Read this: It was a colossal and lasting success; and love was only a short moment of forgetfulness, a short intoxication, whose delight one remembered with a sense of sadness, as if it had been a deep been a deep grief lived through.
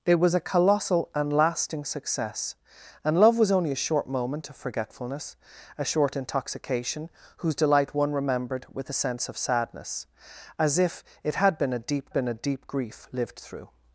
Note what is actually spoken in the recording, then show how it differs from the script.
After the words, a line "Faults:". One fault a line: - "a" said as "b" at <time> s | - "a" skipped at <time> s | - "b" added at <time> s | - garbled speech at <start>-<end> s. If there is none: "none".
It was a colossal and lasting success; and love was only a short moment of forgetfulness, a short intoxication, whose delight one remembered with a sense of sadness, as if it had been a deep been a deep grief lived through.
Faults:
none